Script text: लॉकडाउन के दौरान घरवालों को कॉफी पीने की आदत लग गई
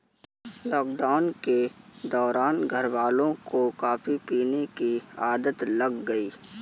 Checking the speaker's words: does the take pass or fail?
pass